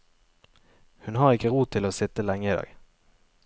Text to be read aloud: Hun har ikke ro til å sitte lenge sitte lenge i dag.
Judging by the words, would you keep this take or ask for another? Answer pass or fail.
fail